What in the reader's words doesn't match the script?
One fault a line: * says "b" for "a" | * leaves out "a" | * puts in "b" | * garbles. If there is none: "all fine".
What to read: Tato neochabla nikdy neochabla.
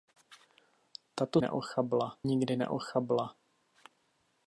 all fine